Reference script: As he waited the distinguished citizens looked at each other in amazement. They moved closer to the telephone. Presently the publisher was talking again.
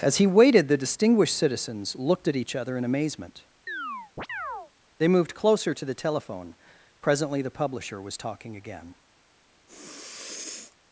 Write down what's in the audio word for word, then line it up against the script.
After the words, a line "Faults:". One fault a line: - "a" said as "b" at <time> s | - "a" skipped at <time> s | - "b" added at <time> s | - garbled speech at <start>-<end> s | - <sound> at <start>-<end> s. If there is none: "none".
As he waited the distinguished citizens looked at each other in amazement. They moved closer to the telephone. Presently the publisher was talking again.
Faults:
- chirp at 3.7-4.7 s
- sniff at 9.7-10.8 s